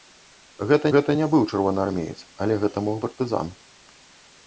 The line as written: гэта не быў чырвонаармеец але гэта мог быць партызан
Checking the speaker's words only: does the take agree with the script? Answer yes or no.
no